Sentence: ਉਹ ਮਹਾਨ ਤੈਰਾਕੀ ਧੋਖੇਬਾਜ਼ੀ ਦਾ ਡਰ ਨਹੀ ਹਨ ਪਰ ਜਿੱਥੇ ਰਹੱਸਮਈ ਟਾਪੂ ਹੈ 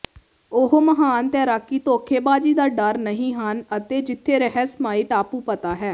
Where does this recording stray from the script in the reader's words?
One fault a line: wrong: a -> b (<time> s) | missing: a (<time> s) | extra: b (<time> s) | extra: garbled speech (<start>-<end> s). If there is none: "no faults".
wrong: ਪਰ -> ਅਤੇ (3.8 s)
extra: ਪਤਾ (5.4 s)